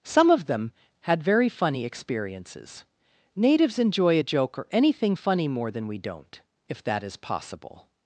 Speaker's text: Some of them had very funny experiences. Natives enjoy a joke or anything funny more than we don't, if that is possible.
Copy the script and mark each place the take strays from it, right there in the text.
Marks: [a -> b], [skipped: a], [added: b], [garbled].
Some of them had very funny experiences. Natives enjoy a joke or anything funny more than we don't, if that is possible.